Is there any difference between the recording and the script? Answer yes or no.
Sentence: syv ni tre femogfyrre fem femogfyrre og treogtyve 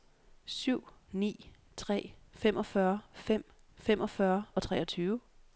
no